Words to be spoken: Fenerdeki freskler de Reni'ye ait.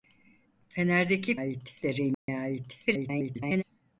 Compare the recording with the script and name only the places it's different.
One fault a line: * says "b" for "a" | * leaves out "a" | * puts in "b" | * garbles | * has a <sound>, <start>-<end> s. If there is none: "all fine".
* says "ait" for "freskler"
* has a dropout, 2.1-2.3 s
* garbles